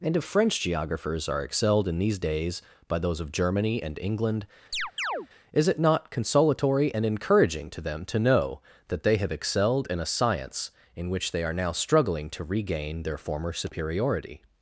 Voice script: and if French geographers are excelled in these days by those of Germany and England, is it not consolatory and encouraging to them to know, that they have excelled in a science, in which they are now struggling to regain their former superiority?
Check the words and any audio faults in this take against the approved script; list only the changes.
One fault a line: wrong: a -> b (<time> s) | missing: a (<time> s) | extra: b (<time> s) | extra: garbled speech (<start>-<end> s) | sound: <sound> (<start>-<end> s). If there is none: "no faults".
sound: chirp (4.7-5.3 s)